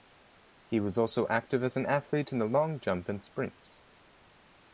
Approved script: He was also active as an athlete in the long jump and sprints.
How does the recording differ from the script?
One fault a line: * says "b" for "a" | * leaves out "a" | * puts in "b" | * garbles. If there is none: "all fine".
all fine